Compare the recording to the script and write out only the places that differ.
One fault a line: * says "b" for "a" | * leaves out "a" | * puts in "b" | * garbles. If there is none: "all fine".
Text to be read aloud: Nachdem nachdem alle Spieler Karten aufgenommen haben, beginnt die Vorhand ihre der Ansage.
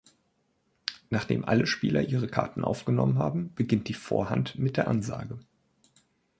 * leaves out "nachdem"
* puts in "ihre"
* says "mit" for "ihre"